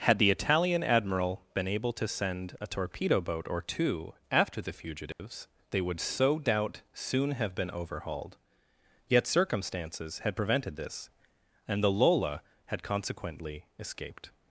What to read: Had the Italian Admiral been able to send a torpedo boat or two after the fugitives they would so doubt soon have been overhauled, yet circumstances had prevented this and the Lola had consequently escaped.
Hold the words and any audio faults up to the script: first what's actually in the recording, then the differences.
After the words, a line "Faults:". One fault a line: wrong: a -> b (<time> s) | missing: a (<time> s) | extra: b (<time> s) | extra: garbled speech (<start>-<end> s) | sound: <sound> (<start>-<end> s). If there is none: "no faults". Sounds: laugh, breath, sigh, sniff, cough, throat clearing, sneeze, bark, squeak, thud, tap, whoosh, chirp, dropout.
Had the Italian Admiral been able to send a torpedo boat or two after the fugitives they would so doubt soon have been overhauled, yet circumstances had prevented this and the Lola had consequently escaped.
Faults:
sound: dropout (5.1-5.2 s)